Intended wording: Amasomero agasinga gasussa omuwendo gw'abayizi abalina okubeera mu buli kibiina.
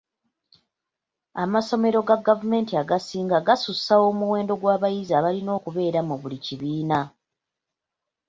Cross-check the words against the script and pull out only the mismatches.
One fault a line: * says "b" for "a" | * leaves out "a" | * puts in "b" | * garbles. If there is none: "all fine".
* puts in "ga gavumenti"